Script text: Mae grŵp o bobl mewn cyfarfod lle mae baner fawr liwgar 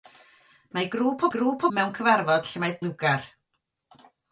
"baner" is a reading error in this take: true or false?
true